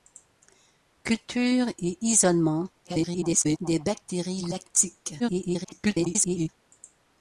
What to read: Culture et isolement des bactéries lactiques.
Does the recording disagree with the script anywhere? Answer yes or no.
yes